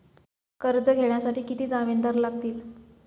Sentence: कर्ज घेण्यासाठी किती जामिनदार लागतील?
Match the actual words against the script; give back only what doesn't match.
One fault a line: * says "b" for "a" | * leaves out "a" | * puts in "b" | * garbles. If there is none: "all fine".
all fine